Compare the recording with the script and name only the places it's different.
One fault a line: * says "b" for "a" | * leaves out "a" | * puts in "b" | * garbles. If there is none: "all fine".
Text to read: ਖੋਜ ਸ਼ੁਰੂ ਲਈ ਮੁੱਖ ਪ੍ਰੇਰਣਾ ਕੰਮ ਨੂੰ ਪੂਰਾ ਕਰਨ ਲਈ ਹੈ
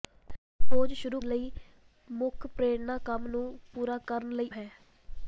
all fine